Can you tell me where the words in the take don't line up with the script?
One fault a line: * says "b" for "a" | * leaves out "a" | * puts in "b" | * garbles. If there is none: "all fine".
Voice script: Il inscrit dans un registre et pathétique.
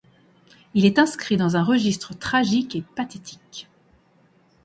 * puts in "est"
* puts in "tragique"